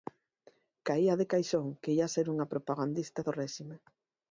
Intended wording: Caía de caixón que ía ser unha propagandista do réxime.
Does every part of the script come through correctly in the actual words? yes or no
yes